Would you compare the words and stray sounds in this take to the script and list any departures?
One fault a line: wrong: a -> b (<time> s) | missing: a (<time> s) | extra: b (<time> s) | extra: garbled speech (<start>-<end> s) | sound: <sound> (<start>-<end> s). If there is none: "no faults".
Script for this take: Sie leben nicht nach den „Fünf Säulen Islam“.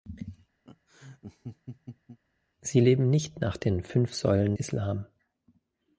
sound: laugh (0.6-2.2 s)